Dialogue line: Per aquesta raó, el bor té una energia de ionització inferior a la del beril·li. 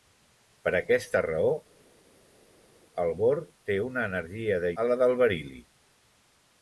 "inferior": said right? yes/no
no